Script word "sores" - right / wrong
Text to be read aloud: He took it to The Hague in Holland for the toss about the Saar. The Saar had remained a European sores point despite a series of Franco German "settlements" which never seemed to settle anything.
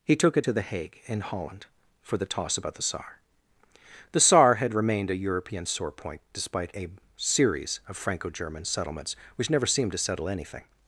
wrong